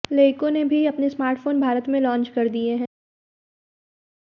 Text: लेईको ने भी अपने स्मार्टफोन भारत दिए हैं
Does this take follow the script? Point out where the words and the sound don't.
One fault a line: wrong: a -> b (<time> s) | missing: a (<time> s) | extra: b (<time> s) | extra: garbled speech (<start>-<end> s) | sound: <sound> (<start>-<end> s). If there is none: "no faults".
extra: में लॉन्च कर (1.9 s)